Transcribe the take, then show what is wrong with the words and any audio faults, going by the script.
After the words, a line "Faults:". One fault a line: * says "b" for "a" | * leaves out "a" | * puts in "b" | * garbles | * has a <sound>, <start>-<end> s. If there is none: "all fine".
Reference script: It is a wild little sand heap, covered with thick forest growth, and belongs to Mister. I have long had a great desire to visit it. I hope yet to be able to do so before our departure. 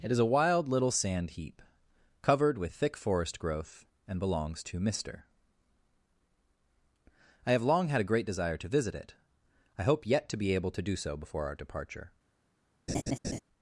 It is a wild little sand heap, covered with thick forest growth, and belongs to Mister. I have long had a great desire to visit it. I hope yet to be able to do so before our departure.
Faults:
* has a laugh, 12.9-13.4 s